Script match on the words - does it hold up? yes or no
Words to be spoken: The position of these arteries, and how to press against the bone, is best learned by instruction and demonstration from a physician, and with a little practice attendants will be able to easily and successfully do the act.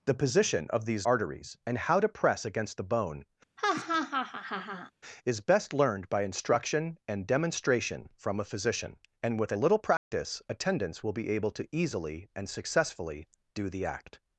yes